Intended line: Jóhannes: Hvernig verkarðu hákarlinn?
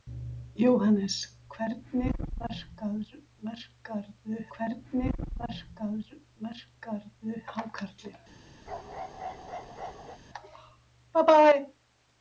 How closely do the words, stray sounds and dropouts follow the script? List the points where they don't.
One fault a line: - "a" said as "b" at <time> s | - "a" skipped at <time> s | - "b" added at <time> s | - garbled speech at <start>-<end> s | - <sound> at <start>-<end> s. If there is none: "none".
- "Hvernig verkarðu" added at 4.6 s
- bark at 8.7-10.2 s